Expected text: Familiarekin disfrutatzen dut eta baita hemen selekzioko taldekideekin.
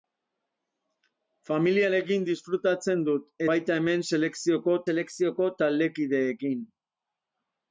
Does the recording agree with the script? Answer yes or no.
no